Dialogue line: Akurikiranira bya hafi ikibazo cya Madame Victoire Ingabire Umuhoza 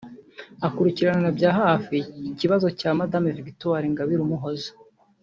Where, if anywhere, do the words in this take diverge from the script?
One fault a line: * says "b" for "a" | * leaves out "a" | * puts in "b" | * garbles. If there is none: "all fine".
all fine